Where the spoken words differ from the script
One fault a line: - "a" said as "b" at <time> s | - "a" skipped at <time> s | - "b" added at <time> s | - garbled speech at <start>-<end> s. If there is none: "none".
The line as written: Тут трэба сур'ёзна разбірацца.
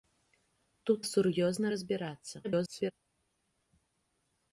- "трэба" skipped at 1.0 s
- garbled speech at 2.4-2.9 s